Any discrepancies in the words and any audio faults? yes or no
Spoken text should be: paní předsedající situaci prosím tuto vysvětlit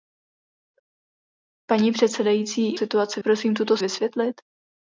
no